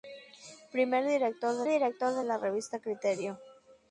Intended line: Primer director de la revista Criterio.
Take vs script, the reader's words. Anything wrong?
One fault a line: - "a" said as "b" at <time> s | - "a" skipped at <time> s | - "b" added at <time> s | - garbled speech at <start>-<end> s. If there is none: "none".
- "director de" added at 1.7 s